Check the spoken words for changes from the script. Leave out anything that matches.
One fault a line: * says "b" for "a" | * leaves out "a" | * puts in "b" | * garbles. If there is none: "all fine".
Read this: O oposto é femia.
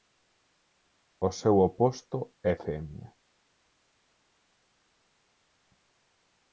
* puts in "seu"